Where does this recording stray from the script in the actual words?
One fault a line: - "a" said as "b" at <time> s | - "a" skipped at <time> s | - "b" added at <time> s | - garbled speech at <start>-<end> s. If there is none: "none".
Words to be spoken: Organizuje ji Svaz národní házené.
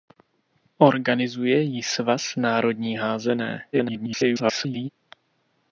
- garbled speech at 3.7-4.9 s